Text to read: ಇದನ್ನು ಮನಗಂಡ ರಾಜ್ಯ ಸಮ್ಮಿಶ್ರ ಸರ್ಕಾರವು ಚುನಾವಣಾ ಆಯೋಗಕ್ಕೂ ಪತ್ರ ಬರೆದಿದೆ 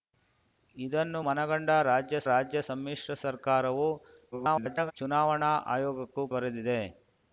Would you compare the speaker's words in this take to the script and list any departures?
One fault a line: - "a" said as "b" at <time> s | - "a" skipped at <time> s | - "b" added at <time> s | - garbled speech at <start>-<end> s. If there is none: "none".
- "ರಾಜ್ಯ" added at 2.3 s
- garbled speech at 4.3-4.9 s
- "ಪತ್ರ" skipped at 6.2 s